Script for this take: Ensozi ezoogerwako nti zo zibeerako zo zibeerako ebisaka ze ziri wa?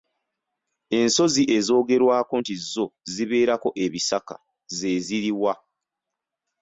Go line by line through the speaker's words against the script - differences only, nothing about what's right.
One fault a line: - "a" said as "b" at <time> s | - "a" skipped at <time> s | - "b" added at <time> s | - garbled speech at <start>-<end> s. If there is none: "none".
- "zo zibeerako" skipped at 3.7 s